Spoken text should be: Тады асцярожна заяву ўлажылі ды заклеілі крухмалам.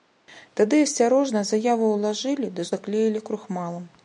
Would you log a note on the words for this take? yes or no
no